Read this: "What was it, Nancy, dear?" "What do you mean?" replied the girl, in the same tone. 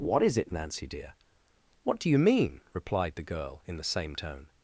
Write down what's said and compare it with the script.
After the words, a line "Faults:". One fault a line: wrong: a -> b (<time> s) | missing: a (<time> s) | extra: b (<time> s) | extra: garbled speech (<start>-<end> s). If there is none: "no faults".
"What is it, Nancy, dear?" "What do you mean?" replied the girl, in the same tone.
Faults:
wrong: was -> is (0.2 s)